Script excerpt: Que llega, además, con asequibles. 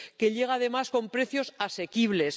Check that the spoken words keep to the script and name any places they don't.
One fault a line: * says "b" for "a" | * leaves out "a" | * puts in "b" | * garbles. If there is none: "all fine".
* puts in "precios"